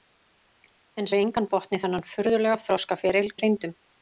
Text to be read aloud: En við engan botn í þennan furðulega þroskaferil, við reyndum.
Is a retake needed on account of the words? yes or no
no